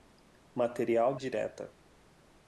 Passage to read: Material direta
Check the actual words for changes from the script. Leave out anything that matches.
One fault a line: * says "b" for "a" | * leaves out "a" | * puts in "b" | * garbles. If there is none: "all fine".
all fine